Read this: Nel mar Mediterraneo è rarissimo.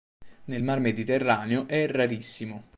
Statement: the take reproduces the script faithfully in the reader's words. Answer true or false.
true